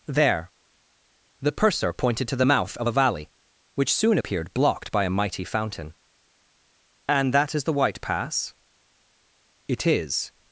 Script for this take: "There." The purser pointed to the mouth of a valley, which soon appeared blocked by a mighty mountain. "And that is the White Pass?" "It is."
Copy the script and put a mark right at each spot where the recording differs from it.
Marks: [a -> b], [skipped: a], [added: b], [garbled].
"There." The purser pointed to the mouth of a valley, which soon appeared blocked by a mighty [mountain. -> fountain] "And that is the White Pass?" "It is."